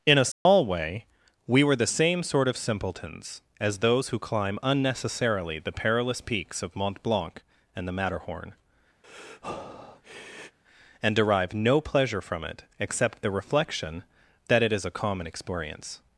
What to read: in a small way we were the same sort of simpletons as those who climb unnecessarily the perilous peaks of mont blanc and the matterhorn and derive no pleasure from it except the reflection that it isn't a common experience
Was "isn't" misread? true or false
true